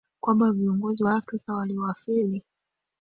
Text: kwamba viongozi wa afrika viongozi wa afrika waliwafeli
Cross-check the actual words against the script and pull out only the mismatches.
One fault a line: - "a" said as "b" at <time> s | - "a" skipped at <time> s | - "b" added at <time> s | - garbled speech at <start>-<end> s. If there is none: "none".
- "viongozi wa afrika" skipped at 1.5 s